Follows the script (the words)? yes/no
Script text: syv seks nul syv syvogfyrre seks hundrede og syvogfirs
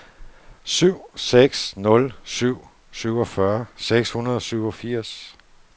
yes